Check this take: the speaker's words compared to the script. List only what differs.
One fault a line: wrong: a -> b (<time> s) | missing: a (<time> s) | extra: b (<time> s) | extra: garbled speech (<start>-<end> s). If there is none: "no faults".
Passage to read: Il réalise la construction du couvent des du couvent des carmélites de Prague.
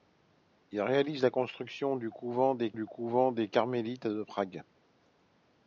no faults